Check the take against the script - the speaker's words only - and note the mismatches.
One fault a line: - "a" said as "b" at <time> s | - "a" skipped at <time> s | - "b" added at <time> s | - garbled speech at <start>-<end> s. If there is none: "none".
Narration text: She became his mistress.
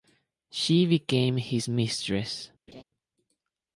none